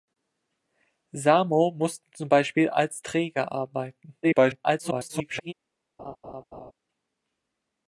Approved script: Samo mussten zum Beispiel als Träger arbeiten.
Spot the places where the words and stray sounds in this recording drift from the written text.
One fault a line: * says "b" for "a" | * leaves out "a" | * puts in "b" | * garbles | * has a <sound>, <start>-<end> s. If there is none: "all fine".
* garbles
* has a laugh, 6.0-6.7 s